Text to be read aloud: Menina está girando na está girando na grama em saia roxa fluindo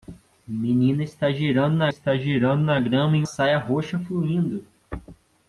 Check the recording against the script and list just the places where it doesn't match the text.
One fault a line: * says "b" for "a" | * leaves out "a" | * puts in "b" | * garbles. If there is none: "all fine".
all fine